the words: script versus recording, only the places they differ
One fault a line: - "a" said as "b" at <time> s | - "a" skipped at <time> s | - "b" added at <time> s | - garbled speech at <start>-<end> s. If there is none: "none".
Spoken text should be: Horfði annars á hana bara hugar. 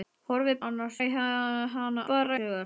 none